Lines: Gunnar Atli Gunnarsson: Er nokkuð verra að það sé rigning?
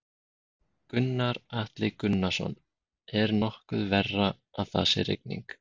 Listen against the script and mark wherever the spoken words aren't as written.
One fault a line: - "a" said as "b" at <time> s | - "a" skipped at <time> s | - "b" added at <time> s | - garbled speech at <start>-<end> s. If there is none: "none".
none